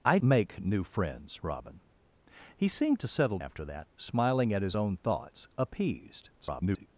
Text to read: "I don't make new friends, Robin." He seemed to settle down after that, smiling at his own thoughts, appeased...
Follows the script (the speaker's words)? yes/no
no